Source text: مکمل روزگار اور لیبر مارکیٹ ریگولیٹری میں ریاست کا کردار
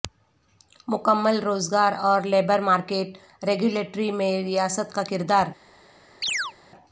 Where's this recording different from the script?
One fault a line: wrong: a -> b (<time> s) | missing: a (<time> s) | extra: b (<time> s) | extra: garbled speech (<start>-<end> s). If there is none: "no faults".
no faults